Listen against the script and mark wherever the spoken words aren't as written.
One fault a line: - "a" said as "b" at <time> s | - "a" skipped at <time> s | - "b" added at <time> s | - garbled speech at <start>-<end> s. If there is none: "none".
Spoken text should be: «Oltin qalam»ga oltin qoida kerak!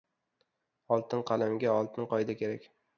none